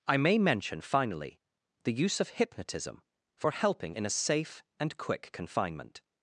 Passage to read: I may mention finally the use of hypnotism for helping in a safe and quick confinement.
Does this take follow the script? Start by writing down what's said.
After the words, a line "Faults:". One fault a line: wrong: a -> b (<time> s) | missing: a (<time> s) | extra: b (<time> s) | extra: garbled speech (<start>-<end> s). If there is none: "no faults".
I may mention finally the use of hypnotism for helping in a safe and quick confinement.
Faults:
no faults